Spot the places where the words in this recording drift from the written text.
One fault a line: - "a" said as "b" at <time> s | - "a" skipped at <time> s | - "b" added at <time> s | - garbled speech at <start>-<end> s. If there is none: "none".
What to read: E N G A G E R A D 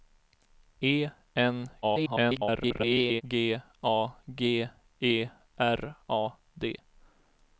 - garbled speech at 1.8-3.2 s